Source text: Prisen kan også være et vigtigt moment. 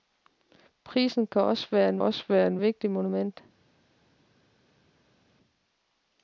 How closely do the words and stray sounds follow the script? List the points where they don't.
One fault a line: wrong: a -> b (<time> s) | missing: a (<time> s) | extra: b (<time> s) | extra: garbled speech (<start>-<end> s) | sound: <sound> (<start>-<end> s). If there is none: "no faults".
extra: også være et (2.0 s)